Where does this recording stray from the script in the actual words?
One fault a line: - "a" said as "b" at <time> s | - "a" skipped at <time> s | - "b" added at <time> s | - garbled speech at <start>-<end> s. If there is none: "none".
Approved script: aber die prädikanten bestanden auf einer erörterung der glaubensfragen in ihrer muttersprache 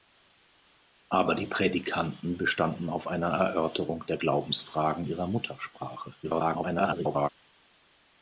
- "in" skipped at 5.1 s
- garbled speech at 6.2-7.3 s